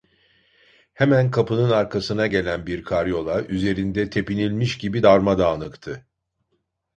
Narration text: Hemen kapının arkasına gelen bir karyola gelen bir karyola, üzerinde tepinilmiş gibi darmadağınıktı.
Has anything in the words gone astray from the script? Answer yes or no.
yes